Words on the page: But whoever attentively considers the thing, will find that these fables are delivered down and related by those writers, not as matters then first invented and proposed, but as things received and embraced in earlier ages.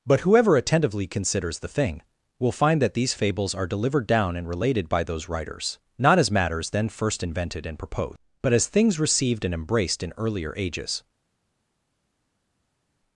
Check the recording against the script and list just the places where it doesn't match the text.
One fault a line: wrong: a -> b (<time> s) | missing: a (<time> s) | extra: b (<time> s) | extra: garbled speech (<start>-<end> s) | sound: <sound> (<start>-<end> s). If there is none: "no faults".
no faults